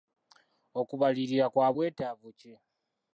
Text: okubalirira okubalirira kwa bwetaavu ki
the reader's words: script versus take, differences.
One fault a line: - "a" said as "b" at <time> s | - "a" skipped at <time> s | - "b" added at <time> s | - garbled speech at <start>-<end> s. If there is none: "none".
- "okubalirira" skipped at 1.4 s